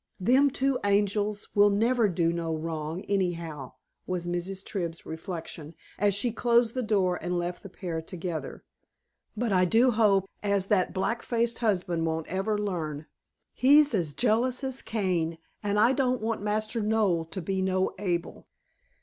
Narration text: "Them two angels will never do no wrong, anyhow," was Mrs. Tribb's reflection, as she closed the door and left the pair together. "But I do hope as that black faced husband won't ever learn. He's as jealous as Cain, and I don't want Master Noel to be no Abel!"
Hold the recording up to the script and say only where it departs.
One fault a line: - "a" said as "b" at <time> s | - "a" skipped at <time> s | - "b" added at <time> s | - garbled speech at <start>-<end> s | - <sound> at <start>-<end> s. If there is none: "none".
none